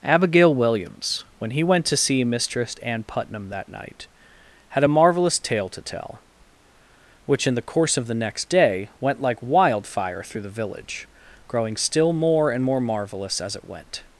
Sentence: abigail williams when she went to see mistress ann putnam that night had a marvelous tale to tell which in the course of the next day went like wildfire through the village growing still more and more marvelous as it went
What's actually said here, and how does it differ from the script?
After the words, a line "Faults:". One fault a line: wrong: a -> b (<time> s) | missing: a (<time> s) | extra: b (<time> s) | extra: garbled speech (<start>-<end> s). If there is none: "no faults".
abigail williams when he went to see mistress ann putnam that night had a marvelous tale to tell which in the course of the next day went like wildfire through the village growing still more and more marvelous as it went
Faults:
wrong: she -> he (1.5 s)